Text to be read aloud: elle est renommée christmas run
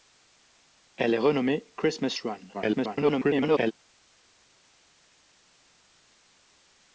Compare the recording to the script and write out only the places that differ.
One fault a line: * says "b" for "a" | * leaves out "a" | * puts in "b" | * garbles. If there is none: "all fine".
* garbles